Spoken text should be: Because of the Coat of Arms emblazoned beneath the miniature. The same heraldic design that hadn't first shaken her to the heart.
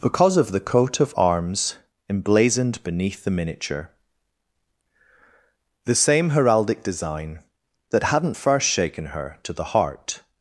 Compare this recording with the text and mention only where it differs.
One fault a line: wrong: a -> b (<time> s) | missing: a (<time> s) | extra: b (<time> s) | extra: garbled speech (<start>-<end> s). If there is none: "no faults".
no faults